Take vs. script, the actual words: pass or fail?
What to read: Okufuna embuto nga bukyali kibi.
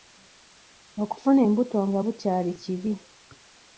pass